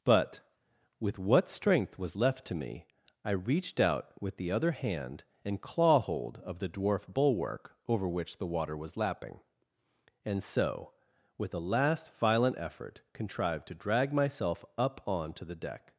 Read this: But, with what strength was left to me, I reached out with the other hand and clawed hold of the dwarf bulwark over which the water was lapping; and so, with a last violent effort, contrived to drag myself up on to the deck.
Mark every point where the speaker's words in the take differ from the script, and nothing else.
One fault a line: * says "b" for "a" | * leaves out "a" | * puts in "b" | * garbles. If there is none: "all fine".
* says "claw" for "clawed"